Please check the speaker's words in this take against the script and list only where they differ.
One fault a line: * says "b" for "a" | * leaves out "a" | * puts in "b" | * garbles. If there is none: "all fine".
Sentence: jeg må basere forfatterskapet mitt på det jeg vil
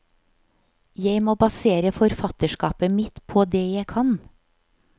* says "kan" for "vil"